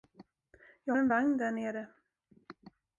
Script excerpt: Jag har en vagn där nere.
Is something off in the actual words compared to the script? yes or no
yes